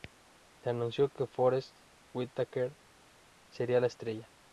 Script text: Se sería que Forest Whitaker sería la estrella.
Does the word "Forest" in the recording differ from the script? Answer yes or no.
no